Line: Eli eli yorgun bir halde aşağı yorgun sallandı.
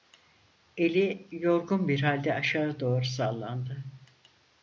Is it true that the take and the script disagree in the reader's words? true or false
true